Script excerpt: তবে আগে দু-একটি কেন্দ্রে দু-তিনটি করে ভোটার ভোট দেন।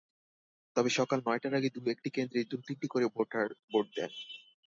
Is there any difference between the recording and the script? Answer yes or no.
yes